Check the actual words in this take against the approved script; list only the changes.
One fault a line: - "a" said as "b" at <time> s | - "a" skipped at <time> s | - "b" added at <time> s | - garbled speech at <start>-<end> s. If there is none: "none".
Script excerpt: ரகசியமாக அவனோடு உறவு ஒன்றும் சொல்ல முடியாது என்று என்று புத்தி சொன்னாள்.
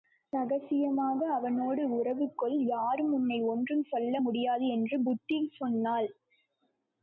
- "கொள் யாரும் உன்னை" added at 2.4 s
- "என்று" skipped at 5.0 s